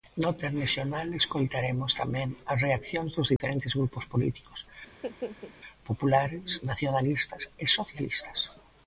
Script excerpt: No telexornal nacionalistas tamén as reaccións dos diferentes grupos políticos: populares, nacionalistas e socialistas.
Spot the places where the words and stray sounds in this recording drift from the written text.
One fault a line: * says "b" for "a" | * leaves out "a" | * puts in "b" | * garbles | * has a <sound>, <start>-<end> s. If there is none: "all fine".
* says "escoitaremos" for "nacionalistas"
* has a dropout, 3.4-3.4 s
* has a laugh, 4.9-5.5 s